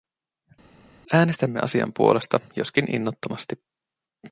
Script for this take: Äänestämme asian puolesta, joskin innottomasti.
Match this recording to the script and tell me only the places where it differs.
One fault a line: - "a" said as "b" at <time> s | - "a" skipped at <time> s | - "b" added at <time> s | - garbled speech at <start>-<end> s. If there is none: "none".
none